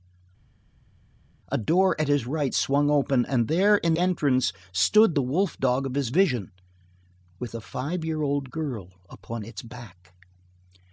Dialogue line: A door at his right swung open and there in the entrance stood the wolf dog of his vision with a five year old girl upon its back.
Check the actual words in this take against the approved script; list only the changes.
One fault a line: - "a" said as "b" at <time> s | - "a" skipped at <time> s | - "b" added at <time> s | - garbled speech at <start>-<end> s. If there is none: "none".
- "the" skipped at 3.9 s